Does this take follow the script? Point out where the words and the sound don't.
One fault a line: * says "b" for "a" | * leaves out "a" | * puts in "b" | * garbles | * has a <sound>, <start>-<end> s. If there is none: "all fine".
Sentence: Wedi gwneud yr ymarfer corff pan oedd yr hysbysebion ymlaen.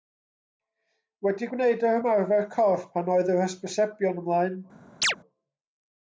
* has a chirp, 5.0-5.2 s